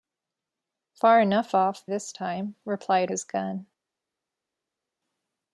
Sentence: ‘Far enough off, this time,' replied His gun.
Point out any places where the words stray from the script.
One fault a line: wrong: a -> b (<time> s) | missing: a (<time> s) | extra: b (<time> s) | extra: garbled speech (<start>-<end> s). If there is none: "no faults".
no faults